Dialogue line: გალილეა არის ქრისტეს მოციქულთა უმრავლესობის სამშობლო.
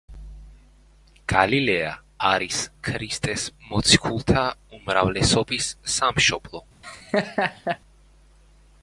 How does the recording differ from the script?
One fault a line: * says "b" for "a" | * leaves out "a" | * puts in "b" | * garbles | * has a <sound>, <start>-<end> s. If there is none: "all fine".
* has a laugh, 6.8-7.8 s